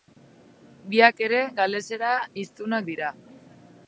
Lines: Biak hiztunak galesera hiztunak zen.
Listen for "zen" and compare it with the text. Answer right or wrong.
wrong